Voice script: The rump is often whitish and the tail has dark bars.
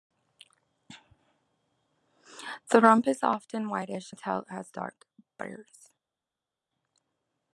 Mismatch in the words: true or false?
true